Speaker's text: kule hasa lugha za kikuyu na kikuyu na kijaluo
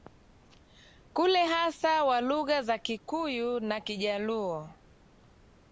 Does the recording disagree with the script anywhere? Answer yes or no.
yes